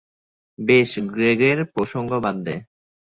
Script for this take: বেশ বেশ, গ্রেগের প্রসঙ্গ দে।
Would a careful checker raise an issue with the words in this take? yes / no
yes